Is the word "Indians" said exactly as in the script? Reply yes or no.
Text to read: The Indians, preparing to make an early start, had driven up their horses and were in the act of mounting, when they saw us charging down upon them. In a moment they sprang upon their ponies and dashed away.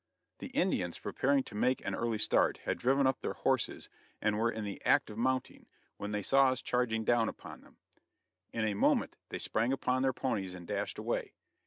yes